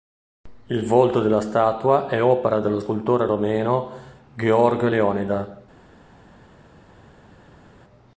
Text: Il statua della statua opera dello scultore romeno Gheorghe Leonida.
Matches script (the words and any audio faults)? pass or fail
fail